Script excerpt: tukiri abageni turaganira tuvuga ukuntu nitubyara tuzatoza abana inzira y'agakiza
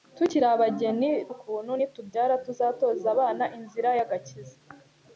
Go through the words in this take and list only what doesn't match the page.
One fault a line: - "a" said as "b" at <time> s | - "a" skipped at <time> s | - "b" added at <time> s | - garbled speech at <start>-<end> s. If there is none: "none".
- "turaganira tuvuga" skipped at 1.1 s